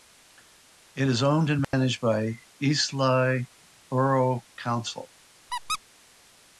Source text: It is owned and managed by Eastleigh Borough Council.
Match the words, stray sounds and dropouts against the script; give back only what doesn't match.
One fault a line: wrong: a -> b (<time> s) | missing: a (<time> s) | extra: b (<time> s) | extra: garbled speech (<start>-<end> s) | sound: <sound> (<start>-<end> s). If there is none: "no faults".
sound: dropout (1.6-1.7 s)
sound: squeak (5.5-5.8 s)